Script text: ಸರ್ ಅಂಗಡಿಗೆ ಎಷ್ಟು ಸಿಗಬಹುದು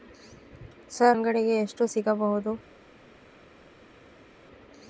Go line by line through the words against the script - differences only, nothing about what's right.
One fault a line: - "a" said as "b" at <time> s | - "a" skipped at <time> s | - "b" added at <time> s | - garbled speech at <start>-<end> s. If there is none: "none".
none